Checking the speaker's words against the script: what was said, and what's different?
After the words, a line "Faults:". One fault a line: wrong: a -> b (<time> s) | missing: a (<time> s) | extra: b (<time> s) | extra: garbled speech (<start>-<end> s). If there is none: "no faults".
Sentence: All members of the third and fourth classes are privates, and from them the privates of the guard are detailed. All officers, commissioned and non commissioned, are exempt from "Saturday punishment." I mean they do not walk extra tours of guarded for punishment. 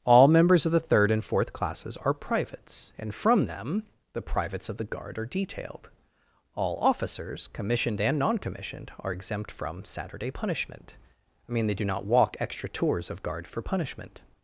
All members of the third and fourth classes are privates, and from them the privates of the guard are detailed. All officers, commissioned and non commissioned, are exempt from "Saturday punishment." I mean they do not walk extra tours of guard for punishment.
Faults:
wrong: guarded -> guard (13.2 s)